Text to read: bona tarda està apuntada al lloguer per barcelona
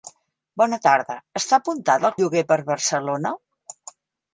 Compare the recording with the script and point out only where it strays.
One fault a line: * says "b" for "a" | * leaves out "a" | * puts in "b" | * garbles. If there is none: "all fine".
all fine